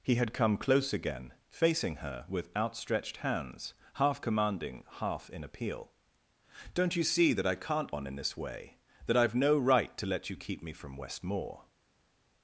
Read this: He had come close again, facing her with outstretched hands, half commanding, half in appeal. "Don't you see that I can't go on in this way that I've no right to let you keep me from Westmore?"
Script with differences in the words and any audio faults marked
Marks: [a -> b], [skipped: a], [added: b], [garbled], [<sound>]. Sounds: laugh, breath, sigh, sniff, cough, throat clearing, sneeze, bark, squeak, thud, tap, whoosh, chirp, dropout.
He had come close again, facing her with outstretched hands, half commanding, half in appeal. "Don't you see that I can't [skipped: go] on in this way that I've no right to let you keep me from Westmore?"